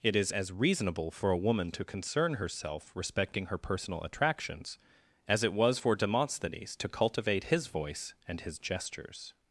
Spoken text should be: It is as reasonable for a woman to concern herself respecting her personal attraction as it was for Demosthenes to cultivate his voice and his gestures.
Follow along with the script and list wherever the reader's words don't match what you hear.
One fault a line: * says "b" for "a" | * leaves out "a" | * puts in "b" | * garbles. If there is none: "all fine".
* says "attractions" for "attraction"